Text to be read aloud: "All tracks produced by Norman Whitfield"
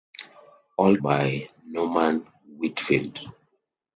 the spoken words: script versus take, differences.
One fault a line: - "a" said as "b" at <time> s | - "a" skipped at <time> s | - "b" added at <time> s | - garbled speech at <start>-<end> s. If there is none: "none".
- "tracks produced" skipped at 1.0 s